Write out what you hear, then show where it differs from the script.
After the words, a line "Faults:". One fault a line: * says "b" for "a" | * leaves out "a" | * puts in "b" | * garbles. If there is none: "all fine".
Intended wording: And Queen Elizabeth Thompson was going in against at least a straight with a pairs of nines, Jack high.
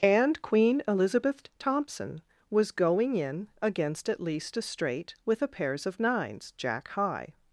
And Queen Elizabeth Thompson was going in against at least a straight with a pairs of nines, Jack high.
Faults:
all fine